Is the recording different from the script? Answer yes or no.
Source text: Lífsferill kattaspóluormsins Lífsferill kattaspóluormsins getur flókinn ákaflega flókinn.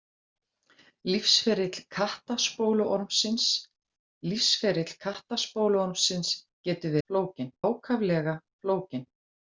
no